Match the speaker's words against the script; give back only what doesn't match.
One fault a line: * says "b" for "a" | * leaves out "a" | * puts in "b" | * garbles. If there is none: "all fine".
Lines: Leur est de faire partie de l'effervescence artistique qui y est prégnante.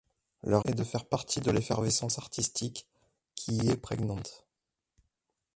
all fine